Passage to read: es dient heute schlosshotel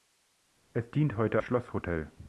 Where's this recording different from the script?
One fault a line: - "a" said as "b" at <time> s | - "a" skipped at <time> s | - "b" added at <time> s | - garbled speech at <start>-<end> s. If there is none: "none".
none